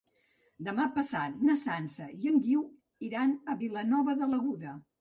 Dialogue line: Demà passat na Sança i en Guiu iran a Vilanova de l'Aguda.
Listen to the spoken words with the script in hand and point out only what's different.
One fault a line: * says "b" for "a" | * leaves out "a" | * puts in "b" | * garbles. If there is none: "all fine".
all fine